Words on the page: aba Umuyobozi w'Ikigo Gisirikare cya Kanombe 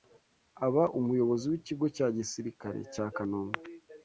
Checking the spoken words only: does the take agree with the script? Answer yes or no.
no